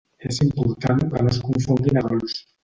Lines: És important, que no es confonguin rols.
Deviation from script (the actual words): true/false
false